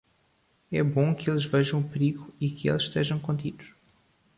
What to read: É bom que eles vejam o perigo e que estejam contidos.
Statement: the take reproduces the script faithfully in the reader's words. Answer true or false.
false